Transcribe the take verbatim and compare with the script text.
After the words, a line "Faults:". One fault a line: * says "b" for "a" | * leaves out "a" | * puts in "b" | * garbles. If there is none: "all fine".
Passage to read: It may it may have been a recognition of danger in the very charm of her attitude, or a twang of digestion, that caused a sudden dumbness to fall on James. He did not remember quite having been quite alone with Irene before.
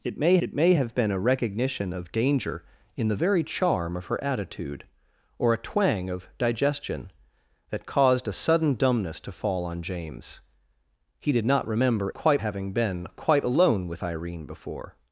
It may it may have been a recognition of danger in the very charm of her attitude, or a twang of digestion, that caused a sudden dumbness to fall on James. He did not remember quite having been quite alone with Irene before.
Faults:
all fine